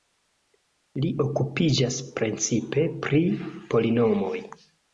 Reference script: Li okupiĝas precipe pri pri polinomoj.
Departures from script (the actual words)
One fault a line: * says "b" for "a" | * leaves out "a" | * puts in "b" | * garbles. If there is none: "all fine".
* leaves out "pri"